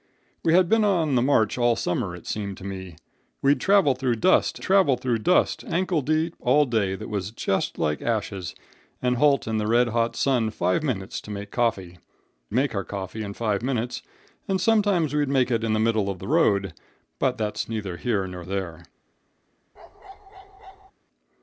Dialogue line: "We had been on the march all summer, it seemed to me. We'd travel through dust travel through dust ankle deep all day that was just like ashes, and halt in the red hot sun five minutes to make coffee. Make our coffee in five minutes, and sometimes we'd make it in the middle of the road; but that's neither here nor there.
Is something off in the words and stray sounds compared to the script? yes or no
yes